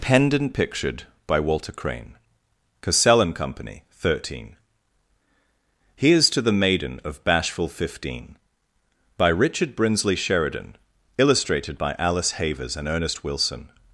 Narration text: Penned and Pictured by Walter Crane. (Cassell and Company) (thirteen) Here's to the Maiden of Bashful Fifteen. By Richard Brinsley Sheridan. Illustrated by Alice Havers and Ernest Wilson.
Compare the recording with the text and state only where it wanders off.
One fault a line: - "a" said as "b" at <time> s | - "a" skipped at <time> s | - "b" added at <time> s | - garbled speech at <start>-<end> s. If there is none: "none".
none